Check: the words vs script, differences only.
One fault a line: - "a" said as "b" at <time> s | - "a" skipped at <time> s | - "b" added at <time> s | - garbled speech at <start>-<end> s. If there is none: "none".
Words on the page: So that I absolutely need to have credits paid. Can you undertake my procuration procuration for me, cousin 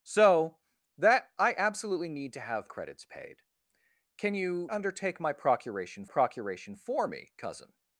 none